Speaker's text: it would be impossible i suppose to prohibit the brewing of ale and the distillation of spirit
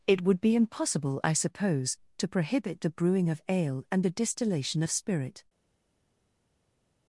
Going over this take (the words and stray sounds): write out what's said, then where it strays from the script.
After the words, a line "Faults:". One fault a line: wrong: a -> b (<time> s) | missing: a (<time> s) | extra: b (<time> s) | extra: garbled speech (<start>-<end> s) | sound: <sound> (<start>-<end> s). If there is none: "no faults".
it would be impossible i suppose to prohibit the brewing of ale and the distillation of spirit
Faults:
no faults